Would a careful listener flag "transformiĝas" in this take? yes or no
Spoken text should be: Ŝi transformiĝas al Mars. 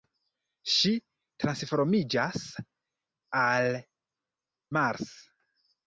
no